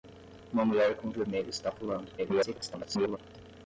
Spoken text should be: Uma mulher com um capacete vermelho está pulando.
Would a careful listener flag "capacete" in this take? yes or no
yes